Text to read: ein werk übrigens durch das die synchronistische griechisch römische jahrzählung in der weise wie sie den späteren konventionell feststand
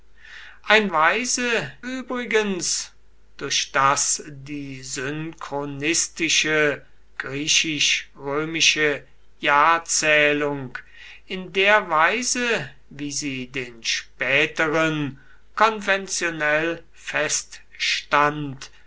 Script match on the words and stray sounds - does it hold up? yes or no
no